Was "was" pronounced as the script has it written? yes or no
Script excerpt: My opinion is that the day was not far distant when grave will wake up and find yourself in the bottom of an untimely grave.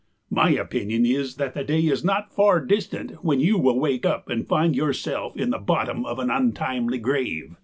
no